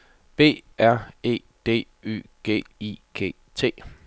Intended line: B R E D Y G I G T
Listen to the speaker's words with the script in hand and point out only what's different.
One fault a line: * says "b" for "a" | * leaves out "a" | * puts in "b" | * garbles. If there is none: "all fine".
all fine